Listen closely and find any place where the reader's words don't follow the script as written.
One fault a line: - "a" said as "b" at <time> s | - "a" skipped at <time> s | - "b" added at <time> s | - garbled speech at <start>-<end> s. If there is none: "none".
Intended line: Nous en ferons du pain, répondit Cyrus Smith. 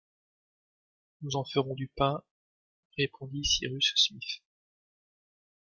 none